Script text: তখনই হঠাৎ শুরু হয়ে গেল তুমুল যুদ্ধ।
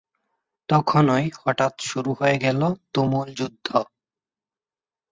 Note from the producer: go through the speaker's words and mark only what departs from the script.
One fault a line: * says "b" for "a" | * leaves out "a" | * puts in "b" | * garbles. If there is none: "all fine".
all fine